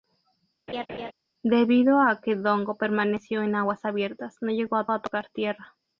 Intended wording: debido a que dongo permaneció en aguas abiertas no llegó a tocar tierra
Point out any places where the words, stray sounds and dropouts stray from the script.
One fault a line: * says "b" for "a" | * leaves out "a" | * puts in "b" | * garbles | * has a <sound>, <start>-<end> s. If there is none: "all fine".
* has a laugh, 0.7-1.1 s
* puts in "a"